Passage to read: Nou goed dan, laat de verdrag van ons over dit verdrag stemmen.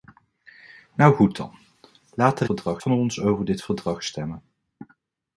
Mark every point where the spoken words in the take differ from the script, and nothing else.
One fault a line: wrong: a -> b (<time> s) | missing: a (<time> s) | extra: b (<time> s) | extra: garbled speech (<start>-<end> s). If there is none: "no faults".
no faults